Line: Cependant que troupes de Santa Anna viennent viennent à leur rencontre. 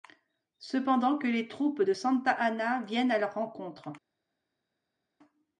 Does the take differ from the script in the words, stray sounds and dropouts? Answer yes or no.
yes